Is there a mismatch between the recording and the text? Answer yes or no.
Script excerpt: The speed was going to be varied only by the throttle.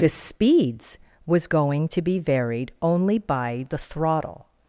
yes